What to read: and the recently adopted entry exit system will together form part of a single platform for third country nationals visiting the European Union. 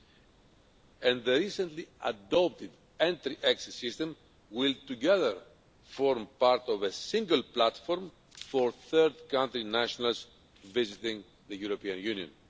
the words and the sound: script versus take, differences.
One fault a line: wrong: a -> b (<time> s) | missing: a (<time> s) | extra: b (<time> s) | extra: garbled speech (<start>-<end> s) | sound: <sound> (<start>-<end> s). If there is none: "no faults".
no faults